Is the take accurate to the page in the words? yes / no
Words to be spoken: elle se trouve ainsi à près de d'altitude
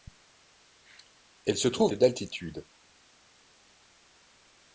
no